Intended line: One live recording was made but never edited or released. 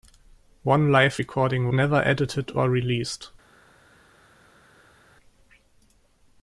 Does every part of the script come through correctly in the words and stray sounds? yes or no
no